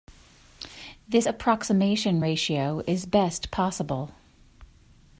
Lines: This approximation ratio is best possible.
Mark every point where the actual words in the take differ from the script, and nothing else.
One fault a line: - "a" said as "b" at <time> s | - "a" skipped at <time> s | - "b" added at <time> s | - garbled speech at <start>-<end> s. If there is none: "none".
none